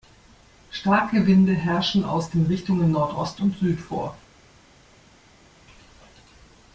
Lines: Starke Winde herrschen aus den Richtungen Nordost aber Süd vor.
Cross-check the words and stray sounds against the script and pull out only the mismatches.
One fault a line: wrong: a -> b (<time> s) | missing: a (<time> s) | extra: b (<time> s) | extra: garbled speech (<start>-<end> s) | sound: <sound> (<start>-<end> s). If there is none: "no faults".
wrong: aber -> und (3.4 s)